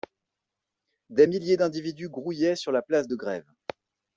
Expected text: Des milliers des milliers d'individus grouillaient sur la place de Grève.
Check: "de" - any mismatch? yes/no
no